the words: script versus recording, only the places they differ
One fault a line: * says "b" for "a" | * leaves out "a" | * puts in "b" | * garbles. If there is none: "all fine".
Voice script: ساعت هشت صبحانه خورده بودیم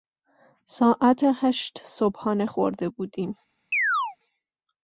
all fine